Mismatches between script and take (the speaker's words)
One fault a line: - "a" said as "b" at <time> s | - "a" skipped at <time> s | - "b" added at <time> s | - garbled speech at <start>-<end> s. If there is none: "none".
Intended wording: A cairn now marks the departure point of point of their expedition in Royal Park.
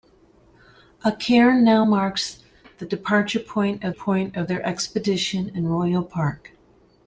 none